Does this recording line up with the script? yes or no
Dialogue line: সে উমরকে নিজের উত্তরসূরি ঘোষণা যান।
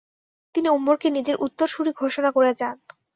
no